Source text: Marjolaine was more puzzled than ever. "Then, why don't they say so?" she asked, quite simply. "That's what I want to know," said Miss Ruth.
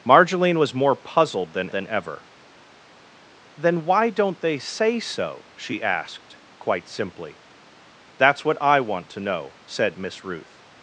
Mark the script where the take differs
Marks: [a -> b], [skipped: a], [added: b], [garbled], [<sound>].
Marjolaine was more puzzled than [added: than] ever. "Then, why don't they say so?" she asked, quite simply. "That's what I want to know," said Miss Ruth.